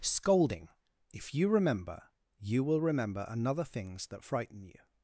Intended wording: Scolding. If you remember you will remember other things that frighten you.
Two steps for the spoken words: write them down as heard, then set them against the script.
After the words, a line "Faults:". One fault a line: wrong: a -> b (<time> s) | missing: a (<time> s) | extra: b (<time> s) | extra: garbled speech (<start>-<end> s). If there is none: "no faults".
Scolding. If you remember you will remember another things that frighten you.
Faults:
wrong: other -> another (3.3 s)